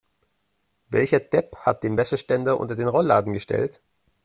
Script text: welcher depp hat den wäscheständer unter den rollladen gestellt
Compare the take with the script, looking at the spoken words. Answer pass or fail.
pass